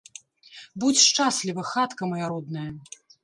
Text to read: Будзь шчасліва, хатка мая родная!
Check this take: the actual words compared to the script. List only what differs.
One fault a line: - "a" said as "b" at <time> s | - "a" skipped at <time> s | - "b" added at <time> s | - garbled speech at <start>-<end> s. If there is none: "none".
none